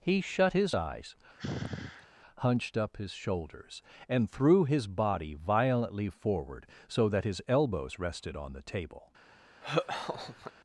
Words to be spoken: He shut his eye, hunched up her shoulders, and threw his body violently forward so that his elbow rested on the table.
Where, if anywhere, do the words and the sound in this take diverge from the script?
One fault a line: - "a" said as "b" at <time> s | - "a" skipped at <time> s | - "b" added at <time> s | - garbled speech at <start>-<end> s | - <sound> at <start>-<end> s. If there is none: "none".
- "eye" said as "eyes" at 0.7 s
- sigh at 1.4-2.1 s
- "her" said as "his" at 3.0 s
- "elbow" said as "elbows" at 7.5 s
- laugh at 9.6-10.5 s